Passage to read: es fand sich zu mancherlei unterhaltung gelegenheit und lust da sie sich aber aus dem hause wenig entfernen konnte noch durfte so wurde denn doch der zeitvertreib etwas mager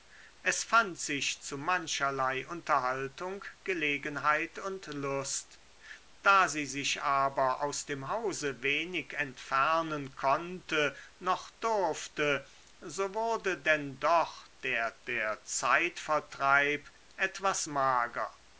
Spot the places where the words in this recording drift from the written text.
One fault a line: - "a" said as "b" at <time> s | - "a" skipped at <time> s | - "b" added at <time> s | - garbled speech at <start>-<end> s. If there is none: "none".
- "der" added at 15.1 s